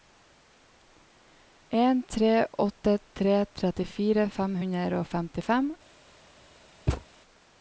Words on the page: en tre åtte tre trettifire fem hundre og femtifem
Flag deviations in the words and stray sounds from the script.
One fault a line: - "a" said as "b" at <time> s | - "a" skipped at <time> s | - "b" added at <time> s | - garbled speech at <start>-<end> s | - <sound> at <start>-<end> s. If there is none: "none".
- thud at 6.9-7.0 s